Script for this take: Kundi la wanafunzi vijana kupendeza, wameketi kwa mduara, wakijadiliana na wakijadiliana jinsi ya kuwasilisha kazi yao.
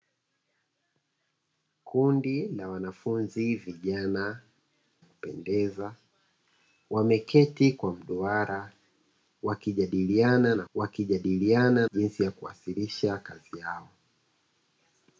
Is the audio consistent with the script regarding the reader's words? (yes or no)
yes